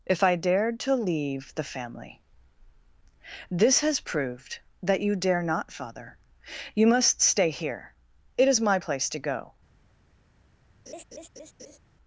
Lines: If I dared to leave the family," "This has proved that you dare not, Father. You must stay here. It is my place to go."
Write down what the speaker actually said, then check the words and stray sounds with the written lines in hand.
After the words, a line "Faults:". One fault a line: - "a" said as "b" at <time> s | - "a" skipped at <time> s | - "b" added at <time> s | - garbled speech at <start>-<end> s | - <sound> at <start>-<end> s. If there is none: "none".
If I dared to leave the family," "This has proved that you dare not, Father. You must stay here. It is my place to go."
Faults:
- laugh at 10.9-11.8 s